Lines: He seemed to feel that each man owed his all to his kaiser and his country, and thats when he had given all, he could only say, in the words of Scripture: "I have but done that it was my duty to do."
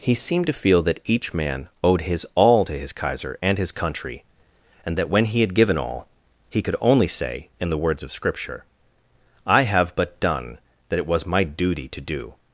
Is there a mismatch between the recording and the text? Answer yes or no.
yes